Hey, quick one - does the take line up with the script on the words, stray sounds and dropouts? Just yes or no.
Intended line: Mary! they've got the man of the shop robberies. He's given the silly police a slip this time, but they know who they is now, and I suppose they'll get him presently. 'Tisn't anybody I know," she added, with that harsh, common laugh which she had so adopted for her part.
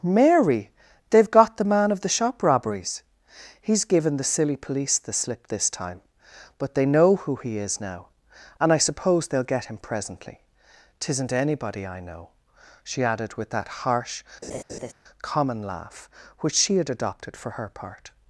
no